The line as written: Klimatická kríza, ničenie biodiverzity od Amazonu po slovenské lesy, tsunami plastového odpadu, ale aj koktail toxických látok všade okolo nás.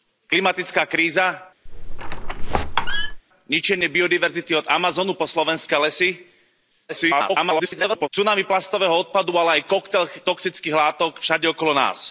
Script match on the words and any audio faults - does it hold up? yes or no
no